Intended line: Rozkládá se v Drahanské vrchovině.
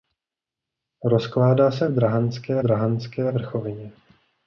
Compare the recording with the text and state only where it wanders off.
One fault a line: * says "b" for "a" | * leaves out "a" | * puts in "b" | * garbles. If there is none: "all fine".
* puts in "Drahanské"